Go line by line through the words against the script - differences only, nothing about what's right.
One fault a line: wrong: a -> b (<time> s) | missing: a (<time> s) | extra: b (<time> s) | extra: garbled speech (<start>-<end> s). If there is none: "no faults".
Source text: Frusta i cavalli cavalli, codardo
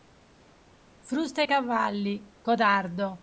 missing: cavalli (2.4 s)